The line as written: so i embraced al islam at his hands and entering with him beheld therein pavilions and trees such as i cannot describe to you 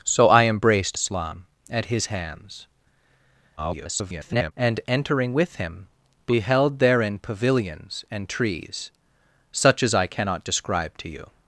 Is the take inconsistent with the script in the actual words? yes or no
yes